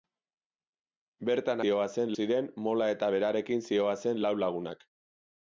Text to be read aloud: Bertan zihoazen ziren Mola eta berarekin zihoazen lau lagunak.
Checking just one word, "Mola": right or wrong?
right